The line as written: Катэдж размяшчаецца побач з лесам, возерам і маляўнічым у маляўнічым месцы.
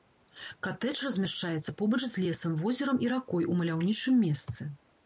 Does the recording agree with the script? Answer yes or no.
no